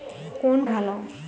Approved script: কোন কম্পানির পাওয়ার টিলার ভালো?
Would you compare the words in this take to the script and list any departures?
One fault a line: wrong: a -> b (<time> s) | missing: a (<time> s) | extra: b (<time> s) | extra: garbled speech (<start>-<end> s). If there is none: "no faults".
missing: কম্পানির পাওয়ার টিলার (0.6 s)